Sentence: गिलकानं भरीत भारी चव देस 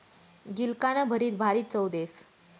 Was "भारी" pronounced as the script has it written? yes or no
yes